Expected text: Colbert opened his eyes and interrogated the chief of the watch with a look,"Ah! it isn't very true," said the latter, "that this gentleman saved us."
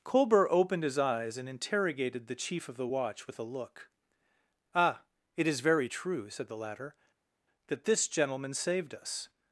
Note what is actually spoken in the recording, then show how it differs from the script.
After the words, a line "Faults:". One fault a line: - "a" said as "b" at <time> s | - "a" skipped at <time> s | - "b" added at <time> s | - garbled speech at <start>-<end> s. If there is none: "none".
Colbert opened his eyes and interrogated the chief of the watch with a look,"Ah! it is very true," said the latter, "that this gentleman saved us."
Faults:
- "isn't" said as "is" at 5.5 s